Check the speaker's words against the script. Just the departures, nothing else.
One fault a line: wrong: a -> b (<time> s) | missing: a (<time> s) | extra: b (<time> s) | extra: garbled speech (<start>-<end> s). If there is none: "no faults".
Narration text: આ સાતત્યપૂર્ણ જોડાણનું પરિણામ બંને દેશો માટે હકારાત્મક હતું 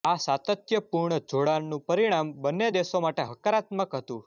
no faults